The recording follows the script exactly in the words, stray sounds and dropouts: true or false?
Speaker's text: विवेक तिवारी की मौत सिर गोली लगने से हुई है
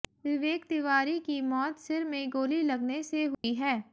false